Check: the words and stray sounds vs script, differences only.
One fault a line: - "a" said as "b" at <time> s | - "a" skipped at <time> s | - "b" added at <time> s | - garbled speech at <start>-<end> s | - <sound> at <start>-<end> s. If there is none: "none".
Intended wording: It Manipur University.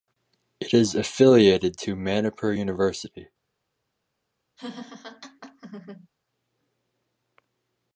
- "is affiliated to" added at 0.7 s
- laugh at 4.6-6.1 s